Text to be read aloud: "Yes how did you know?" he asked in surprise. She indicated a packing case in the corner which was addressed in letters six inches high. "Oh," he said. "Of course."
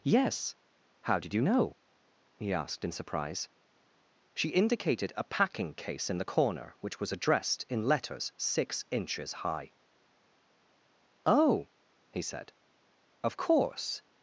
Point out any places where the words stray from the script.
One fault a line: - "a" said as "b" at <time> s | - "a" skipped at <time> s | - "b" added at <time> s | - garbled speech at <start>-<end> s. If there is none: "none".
none